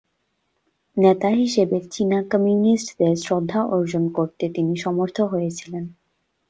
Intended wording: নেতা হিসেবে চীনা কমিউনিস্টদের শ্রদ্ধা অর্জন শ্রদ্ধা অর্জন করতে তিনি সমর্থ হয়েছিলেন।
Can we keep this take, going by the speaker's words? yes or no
no